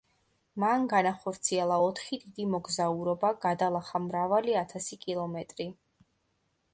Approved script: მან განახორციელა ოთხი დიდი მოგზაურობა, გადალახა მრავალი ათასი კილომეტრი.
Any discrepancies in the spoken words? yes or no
no